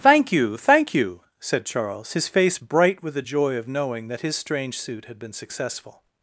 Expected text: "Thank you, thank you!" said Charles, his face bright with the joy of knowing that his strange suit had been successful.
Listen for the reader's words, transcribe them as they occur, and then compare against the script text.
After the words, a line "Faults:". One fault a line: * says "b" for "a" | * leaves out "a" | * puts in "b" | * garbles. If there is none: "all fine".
"Thank you, thank you!" said Charles, his face bright with the joy of knowing that his strange suit had been successful.
Faults:
all fine